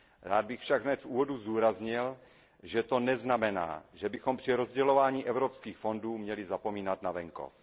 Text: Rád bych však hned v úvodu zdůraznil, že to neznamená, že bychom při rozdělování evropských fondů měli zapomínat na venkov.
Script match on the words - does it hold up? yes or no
yes